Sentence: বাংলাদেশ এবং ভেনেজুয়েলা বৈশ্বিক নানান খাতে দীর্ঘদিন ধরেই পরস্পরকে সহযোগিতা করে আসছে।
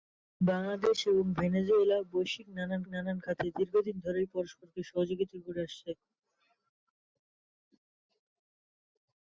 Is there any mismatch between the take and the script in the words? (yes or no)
yes